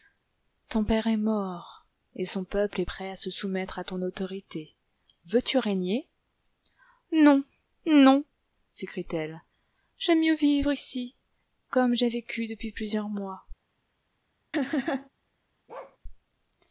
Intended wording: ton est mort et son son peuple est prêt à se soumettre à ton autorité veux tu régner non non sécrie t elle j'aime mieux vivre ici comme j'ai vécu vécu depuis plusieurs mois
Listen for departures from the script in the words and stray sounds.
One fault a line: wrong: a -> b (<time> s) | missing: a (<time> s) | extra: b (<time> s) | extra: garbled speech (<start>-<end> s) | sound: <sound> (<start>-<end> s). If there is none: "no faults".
extra: père (0.8 s)
missing: son (2.4 s)
missing: vécu (12.5 s)
sound: laugh (14.5-15.1 s)
sound: bark (15.7-16.0 s)